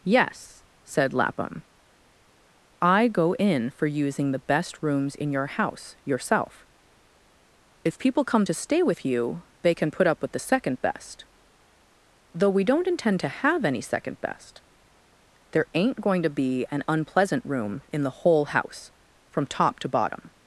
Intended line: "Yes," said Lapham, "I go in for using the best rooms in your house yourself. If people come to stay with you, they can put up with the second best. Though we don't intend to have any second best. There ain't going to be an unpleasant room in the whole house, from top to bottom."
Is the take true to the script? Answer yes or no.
yes